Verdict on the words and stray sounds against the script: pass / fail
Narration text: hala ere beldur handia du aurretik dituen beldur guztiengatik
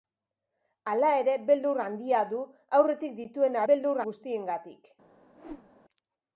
fail